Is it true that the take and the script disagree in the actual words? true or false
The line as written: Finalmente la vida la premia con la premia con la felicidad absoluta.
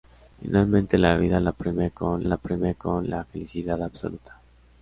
false